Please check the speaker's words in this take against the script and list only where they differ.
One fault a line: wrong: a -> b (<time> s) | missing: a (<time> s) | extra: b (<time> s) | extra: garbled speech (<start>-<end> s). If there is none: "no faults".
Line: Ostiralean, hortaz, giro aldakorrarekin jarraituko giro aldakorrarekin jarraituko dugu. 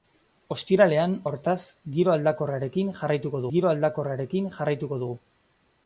no faults